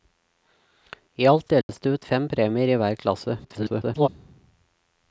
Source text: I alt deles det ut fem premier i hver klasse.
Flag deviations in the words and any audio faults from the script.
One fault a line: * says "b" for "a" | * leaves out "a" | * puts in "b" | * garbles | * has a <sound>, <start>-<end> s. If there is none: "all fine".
* has a dropout, 1.6-1.7 s
* garbles